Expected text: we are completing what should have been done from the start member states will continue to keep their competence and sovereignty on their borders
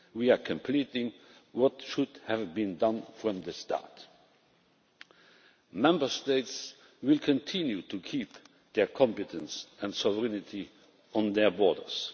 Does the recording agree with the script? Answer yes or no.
yes